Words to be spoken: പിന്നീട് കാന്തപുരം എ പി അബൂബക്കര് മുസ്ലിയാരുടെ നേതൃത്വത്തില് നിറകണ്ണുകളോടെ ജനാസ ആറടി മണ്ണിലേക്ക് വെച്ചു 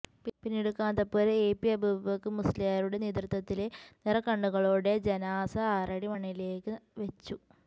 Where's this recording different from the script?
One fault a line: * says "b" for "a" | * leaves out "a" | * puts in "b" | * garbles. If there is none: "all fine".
all fine